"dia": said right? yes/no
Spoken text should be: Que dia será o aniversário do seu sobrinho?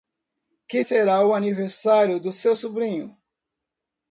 no